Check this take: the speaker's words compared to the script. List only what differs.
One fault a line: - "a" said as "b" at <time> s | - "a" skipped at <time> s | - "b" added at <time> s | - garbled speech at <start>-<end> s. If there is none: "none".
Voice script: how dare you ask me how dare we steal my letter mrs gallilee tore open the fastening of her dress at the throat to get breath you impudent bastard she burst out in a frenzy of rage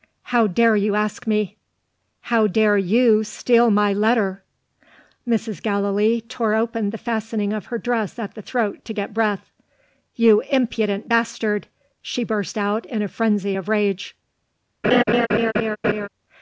- "we" said as "you" at 2.8 s